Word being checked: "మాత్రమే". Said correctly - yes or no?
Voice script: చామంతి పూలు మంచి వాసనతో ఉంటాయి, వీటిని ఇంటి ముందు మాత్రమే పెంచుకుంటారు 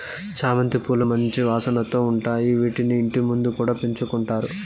no